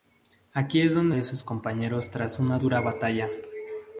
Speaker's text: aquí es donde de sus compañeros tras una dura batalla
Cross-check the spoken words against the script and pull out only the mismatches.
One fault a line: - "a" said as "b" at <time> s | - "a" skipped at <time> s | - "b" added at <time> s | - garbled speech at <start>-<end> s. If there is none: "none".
none